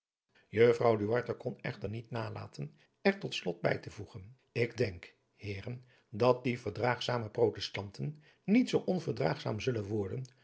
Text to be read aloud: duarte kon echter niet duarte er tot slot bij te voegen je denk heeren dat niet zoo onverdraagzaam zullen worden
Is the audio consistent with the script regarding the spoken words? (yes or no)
no